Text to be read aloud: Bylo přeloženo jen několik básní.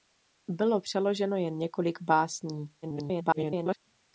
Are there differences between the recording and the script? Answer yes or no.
yes